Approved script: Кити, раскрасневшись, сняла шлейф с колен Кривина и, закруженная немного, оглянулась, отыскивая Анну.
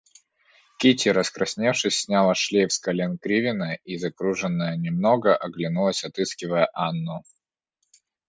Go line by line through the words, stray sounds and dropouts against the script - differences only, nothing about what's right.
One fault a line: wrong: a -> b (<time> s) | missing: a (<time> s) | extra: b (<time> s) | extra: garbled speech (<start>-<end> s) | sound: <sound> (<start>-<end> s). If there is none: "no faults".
no faults